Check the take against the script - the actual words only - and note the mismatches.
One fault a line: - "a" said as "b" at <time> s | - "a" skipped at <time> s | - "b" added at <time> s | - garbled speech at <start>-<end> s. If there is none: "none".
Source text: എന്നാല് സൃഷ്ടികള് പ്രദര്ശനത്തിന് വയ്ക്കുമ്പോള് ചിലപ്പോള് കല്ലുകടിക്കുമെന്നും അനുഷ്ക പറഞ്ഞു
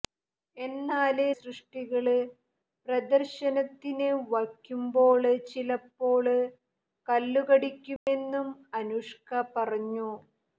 none